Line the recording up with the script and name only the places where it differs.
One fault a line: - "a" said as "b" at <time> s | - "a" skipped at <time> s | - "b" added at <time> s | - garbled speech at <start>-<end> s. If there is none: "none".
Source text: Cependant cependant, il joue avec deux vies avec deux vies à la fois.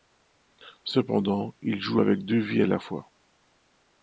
- "cependant" skipped at 1.5 s
- "avec deux vies" skipped at 2.6 s